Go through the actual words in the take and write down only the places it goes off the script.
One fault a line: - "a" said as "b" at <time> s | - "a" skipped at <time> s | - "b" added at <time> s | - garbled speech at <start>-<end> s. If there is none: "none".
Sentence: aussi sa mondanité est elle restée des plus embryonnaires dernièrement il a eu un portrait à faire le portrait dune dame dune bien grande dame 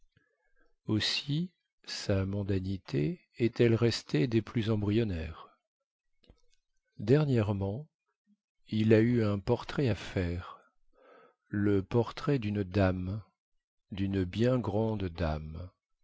none